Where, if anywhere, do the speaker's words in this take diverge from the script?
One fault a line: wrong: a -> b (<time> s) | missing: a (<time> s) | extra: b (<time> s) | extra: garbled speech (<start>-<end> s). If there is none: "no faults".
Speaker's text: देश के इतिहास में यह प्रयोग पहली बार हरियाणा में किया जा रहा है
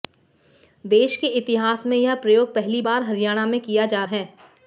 missing: रहा (4.0 s)